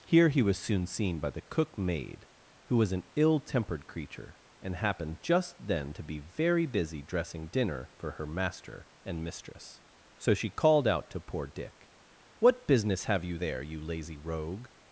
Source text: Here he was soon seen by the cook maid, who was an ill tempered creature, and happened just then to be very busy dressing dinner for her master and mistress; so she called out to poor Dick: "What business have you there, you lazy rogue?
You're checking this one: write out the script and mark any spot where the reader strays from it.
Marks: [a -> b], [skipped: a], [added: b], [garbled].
Here he was soon seen by the cook maid, who was an ill tempered creature, and happened just then to be very busy dressing dinner for her master and mistress; so she called out to poor Dick: "What business have you there, you lazy rogue?